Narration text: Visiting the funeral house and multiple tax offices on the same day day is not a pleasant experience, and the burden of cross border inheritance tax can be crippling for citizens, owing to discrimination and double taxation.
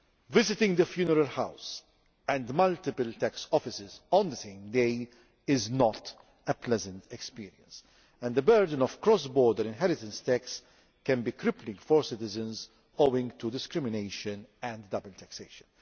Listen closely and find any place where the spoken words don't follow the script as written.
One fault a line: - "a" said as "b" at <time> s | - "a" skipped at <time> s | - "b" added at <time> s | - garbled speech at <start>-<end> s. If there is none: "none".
- "day" skipped at 5.1 s